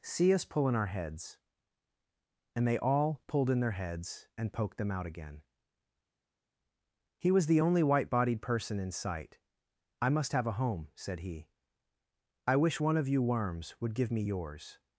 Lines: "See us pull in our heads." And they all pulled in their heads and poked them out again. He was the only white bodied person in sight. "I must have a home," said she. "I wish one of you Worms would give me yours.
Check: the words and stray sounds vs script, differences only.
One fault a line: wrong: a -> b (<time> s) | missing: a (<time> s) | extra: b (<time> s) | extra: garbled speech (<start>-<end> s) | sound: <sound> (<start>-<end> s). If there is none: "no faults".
wrong: she -> he (11.2 s)